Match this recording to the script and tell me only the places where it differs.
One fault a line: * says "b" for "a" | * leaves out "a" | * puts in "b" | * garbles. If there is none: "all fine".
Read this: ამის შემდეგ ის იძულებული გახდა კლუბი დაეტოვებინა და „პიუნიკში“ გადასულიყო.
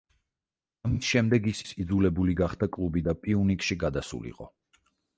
* puts in "ის"
* leaves out "დაეტოვებინა"